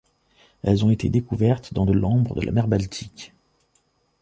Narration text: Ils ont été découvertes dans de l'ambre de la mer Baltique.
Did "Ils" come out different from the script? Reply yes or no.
yes